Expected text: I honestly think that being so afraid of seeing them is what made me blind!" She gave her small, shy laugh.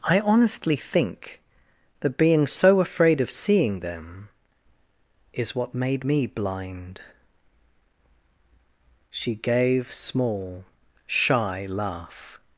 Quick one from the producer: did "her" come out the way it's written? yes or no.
no